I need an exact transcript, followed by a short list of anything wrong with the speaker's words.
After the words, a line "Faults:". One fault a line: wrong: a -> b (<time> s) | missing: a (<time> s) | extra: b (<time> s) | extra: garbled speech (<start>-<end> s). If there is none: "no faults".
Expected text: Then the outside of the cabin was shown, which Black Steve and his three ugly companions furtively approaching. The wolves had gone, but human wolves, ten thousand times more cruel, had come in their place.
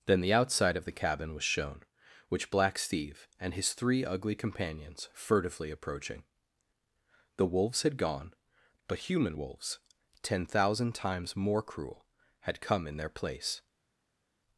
Then the outside of the cabin was shown, which Black Steve and his three ugly companions furtively approaching. The wolves had gone, but human wolves, ten thousand times more cruel, had come in their place.
Faults:
no faults